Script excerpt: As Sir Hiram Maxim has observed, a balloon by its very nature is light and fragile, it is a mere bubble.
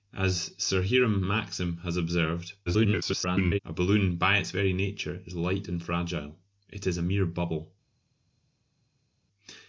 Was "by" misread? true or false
false